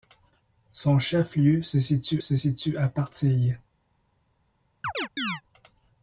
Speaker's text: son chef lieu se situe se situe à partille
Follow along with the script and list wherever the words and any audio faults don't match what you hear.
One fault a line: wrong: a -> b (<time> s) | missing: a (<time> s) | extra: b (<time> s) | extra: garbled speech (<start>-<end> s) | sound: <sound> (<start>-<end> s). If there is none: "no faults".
sound: chirp (4.8-5.4 s)